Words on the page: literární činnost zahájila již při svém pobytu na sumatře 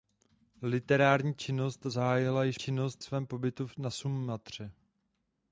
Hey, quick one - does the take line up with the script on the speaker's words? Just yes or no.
no